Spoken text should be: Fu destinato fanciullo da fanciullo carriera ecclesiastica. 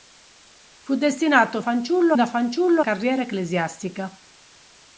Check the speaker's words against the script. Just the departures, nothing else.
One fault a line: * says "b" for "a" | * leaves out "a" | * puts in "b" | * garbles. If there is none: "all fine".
all fine